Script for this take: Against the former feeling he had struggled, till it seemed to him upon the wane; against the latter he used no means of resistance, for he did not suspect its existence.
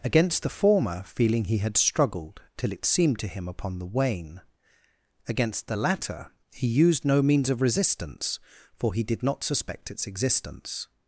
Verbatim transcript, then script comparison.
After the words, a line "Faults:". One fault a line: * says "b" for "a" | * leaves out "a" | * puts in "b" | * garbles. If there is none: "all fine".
Against the former feeling he had struggled, till it seemed to him upon the wane; against the latter he used no means of resistance, for he did not suspect its existence.
Faults:
all fine